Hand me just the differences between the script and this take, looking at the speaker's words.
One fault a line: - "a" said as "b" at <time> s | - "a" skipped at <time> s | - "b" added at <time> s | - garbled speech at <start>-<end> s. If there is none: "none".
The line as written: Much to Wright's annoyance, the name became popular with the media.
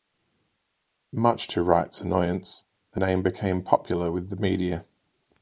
none